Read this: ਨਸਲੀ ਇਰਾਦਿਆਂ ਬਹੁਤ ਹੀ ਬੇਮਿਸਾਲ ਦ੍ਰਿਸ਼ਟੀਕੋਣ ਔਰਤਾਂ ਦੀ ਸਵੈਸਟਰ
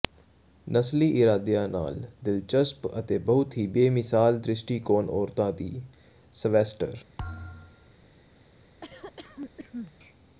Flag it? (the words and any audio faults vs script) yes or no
yes